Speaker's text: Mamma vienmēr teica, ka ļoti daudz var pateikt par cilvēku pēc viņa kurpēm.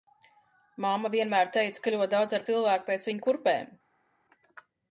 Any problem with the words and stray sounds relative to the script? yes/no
yes